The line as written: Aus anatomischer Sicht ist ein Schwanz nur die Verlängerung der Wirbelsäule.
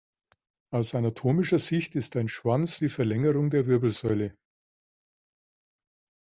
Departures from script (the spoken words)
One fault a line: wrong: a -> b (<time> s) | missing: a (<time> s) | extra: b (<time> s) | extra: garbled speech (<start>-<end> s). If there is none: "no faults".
missing: nur (2.8 s)